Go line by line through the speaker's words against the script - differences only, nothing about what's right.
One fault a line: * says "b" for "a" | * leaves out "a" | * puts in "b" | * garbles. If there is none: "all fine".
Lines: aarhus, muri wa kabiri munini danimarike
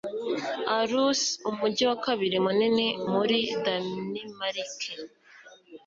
* says "umujyi" for "muri"
* puts in "muri"